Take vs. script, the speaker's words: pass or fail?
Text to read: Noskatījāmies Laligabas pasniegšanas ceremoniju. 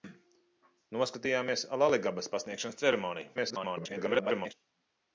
fail